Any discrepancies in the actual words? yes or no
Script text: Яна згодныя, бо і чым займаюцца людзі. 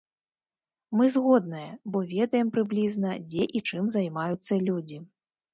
yes